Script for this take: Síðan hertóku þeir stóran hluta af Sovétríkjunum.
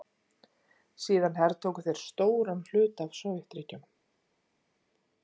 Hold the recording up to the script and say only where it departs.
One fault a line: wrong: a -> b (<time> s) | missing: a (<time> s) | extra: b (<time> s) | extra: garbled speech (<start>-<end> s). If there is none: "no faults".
no faults